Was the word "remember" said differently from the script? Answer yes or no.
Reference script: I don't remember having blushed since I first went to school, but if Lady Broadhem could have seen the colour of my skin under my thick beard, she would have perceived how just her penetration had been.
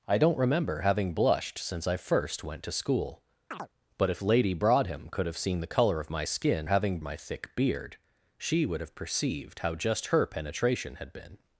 no